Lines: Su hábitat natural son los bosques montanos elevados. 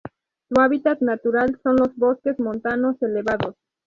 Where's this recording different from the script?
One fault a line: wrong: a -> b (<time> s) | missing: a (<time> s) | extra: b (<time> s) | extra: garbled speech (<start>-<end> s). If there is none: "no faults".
no faults